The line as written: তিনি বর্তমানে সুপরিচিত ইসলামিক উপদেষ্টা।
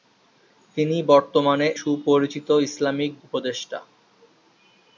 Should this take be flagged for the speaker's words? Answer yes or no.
no